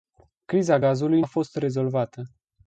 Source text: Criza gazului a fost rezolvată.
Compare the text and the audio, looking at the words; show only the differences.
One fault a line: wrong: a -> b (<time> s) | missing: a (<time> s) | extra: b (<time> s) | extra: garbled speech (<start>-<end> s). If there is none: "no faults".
no faults